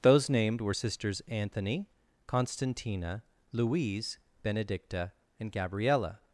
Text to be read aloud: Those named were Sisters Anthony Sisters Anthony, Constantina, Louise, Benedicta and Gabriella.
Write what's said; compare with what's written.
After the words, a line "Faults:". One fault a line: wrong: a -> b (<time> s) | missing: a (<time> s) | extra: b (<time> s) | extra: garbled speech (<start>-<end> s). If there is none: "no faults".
Those named were Sisters Anthony, Constantina, Louise, Benedicta and Gabriella.
Faults:
missing: Sisters Anthony (1.9 s)